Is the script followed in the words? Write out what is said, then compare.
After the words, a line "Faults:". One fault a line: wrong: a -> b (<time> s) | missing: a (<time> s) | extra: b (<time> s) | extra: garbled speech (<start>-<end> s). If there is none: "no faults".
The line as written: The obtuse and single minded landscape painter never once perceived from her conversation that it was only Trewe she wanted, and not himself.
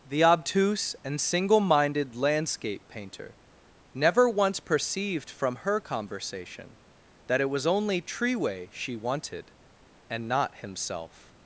The obtuse and single minded landscape painter never once perceived from her conversation that it was only Trewe she wanted, and not himself.
Faults:
no faults